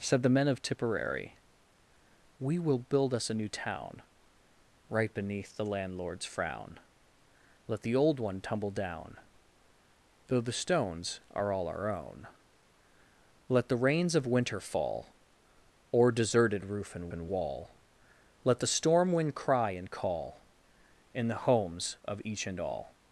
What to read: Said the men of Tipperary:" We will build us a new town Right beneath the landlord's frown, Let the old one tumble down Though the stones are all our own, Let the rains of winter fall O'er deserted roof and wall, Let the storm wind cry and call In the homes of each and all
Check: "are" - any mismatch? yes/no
no